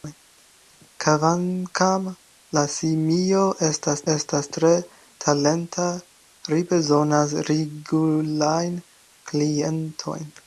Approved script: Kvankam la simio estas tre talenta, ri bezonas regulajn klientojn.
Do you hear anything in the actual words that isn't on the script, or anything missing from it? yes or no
yes